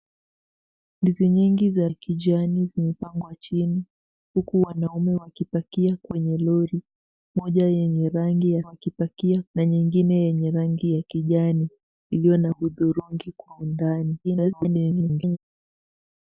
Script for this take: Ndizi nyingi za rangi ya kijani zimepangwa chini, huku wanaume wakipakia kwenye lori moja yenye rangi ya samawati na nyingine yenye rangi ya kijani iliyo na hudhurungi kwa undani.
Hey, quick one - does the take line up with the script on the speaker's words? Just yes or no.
no